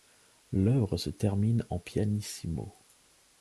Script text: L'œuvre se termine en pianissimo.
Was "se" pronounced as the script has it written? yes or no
yes